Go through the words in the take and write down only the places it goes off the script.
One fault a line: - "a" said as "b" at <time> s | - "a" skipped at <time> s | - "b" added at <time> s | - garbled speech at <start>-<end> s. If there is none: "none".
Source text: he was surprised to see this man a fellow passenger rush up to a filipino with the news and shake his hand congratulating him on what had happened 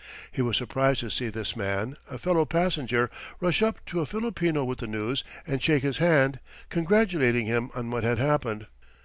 none